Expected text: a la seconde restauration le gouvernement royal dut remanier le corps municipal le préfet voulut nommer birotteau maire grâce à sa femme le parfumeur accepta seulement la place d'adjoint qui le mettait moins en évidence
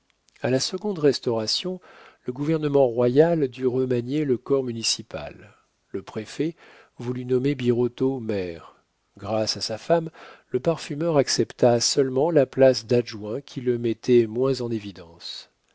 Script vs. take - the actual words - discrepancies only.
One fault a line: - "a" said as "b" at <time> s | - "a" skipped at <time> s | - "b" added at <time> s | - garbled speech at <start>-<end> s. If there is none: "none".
none